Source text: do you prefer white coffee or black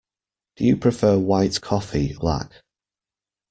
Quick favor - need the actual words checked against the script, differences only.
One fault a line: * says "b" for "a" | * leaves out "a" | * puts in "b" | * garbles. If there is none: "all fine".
* leaves out "or"